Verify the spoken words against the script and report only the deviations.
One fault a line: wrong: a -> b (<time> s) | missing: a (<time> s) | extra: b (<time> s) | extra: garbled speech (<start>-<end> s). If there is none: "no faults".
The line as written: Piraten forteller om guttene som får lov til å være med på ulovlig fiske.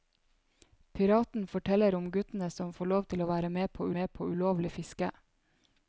extra: med på (4.0 s)